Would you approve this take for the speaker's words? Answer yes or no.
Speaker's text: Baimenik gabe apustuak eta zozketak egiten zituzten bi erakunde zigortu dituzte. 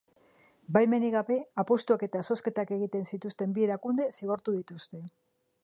yes